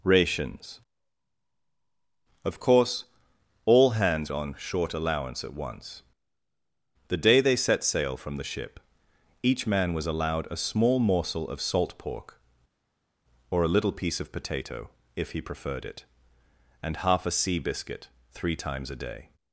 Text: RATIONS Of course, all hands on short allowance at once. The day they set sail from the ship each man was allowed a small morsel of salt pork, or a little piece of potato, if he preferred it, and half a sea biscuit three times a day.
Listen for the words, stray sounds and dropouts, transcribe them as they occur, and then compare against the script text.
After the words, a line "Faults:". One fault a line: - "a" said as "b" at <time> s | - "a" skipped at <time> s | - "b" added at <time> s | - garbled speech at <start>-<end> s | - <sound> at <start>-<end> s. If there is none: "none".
RATIONS Of course, all hands on short allowance at once. The day they set sail from the ship each man was allowed a small morsel of salt pork, or a little piece of potato, if he preferred it, and half a sea biscuit three times a day.
Faults:
none